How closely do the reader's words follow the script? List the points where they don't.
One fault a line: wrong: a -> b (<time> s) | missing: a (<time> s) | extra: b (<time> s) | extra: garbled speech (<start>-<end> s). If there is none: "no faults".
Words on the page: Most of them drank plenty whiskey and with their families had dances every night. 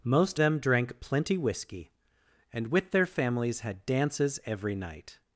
missing: of (0.4 s)